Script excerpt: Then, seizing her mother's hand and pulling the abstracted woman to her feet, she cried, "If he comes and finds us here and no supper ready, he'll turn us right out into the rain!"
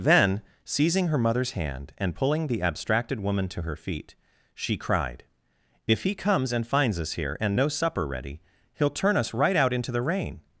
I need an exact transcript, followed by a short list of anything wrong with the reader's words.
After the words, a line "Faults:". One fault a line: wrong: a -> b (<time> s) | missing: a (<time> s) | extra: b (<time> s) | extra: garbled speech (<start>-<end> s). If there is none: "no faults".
Then, seizing her mother's hand and pulling the abstracted woman to her feet, she cried, "If he comes and finds us here and no supper ready, he'll turn us right out into the rain!"
Faults:
no faults